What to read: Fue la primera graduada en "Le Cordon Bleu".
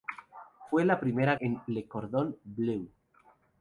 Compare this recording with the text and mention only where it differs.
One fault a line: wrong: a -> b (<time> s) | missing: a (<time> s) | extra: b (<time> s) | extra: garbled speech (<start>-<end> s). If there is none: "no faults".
missing: graduada (1.4 s)